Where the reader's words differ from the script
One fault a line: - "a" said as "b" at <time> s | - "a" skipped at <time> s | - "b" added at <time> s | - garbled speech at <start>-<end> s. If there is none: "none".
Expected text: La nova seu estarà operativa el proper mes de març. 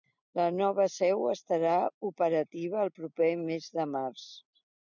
none